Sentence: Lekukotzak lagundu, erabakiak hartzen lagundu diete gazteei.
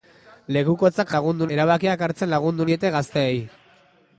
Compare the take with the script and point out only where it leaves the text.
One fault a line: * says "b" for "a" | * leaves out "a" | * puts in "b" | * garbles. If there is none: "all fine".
all fine